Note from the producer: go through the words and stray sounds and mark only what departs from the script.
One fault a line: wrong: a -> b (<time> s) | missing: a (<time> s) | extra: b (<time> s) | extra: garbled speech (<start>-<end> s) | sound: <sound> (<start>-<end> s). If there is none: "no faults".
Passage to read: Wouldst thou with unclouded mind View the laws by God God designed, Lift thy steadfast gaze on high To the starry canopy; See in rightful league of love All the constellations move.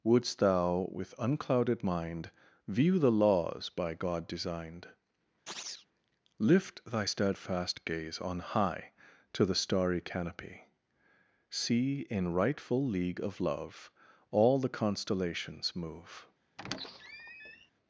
missing: God (4.3 s)
sound: chirp (5.5-5.9 s)
sound: squeak (16.6-17.7 s)